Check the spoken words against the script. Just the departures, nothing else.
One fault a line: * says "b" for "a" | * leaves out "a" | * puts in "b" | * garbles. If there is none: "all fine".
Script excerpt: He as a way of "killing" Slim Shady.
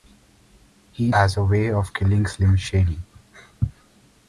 all fine